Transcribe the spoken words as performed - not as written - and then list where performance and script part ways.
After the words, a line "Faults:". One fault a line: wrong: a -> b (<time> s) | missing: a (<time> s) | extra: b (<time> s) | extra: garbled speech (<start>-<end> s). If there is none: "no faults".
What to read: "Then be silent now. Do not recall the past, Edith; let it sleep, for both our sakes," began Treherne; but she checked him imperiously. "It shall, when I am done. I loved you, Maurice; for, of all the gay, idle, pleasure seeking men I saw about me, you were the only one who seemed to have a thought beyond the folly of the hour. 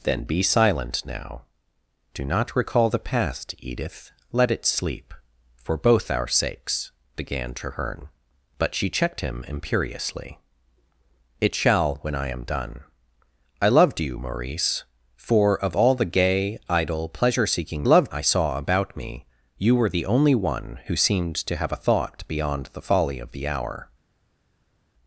"Then be silent now. Do not recall the past, Edith; let it sleep, for both our sakes," began Treherne; but she checked him imperiously. "It shall, when I am done. I loved you, Maurice; for, of all the gay, idle, pleasure seeking loved I saw about me, you were the only one who seemed to have a thought beyond the folly of the hour.
Faults:
wrong: men -> loved (17.8 s)